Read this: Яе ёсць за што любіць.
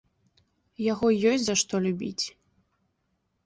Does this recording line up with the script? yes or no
no